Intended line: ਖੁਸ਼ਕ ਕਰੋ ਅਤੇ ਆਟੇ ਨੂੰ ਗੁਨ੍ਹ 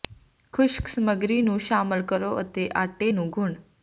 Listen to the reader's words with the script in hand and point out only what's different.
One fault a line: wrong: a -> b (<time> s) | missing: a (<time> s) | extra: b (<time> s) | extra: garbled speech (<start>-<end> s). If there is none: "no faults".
extra: ਸਮੱਗਰੀ ਨੂੰ ਸ਼ਾਮਲ (0.9 s)